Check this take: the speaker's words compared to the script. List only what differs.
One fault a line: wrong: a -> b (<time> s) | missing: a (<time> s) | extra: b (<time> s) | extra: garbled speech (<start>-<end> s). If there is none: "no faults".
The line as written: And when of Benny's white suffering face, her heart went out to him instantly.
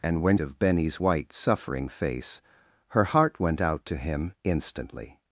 no faults